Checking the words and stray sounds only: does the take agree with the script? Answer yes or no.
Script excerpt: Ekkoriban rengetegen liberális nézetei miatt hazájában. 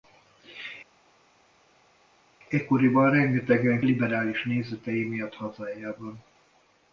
yes